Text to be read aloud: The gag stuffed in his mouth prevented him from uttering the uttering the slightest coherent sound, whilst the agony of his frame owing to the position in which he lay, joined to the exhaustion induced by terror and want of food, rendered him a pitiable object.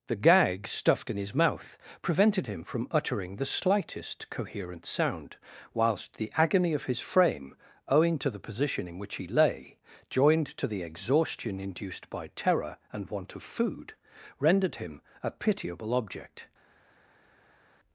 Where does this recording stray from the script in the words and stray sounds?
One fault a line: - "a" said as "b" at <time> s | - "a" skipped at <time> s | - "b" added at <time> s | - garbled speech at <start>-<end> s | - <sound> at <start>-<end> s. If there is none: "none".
- "uttering the" skipped at 3.5 s